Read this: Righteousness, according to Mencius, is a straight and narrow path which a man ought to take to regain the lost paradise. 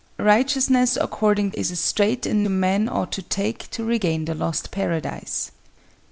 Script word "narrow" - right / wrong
wrong